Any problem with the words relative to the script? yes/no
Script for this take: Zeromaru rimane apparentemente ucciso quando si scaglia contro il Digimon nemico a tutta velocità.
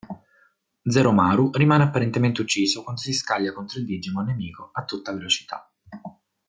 no